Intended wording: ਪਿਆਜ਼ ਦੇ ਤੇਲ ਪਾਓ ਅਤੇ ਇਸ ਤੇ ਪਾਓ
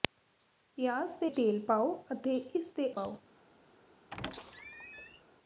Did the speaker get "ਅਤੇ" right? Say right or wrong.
right